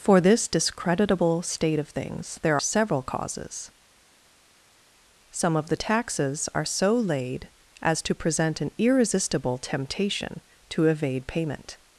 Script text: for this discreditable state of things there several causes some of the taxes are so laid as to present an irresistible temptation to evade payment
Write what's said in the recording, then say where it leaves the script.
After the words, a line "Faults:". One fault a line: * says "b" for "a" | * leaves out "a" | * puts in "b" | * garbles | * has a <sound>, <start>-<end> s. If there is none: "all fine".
for this discreditable state of things there several causes some of the taxes are so laid as to present an irresistible temptation to evade payment
Faults:
all fine